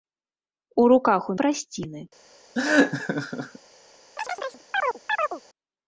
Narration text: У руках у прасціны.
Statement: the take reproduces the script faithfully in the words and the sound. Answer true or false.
false